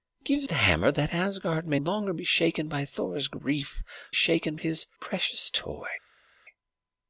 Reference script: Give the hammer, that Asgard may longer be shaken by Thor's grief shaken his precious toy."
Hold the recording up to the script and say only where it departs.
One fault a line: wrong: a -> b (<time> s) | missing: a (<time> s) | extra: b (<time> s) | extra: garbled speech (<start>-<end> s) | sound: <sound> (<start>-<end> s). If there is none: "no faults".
no faults